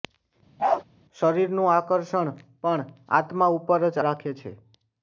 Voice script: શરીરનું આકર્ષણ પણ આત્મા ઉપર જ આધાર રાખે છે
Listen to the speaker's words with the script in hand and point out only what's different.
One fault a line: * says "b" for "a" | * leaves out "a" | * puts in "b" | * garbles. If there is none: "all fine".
* leaves out "આધાર"